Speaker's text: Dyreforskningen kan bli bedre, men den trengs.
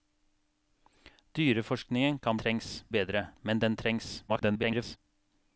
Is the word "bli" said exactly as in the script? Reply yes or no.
no